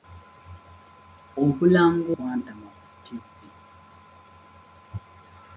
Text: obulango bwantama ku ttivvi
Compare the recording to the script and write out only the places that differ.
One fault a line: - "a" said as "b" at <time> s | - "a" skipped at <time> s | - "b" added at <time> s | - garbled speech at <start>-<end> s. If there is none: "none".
none